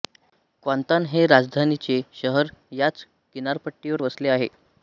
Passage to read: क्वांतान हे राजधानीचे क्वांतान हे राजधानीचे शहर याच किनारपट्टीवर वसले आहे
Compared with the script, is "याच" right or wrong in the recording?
right